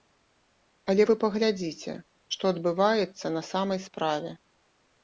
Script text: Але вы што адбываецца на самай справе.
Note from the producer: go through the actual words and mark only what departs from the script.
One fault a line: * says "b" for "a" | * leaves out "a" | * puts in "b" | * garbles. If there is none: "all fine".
* puts in "паглядзіце"